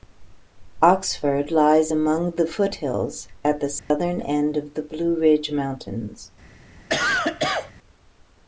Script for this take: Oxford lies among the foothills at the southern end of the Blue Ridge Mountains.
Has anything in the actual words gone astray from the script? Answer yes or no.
no